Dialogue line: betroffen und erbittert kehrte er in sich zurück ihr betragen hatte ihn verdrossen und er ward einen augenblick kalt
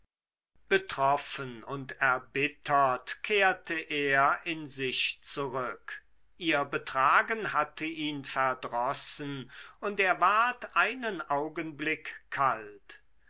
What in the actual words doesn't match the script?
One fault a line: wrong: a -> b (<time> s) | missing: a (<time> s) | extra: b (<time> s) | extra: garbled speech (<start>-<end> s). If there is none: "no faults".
no faults